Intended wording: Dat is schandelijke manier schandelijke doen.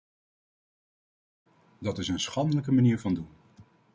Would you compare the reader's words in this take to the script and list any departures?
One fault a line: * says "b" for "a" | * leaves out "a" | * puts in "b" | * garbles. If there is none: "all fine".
* puts in "een"
* says "van" for "schandelijke"